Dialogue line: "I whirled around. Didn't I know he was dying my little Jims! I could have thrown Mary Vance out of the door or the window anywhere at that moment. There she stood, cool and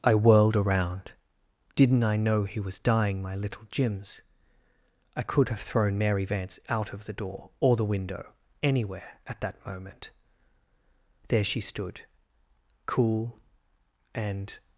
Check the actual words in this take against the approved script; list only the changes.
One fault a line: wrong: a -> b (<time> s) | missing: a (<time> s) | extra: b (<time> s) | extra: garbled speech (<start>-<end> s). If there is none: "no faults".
no faults